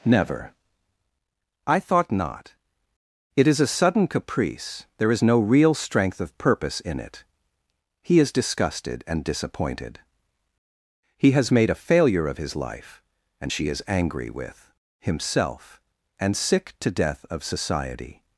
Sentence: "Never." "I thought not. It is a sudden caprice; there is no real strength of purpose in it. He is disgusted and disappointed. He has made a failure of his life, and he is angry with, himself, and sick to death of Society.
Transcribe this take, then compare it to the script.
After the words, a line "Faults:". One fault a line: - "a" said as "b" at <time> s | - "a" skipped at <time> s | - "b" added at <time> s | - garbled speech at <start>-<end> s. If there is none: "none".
"Never." "I thought not. It is a sudden caprice; there is no real strength of purpose in it. He is disgusted and disappointed. He has made a failure of his life, and she is angry with, himself, and sick to death of Society.
Faults:
- "he" said as "she" at 13.5 s